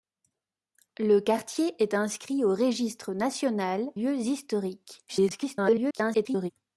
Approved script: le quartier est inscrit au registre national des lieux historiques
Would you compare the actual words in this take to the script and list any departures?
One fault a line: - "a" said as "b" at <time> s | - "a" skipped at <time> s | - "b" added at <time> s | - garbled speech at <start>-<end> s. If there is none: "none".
- "des" skipped at 3.9 s
- garbled speech at 5.1-6.5 s